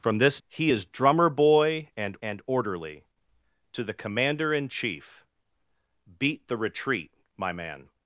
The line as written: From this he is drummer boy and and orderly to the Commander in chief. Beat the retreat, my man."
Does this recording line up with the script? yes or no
yes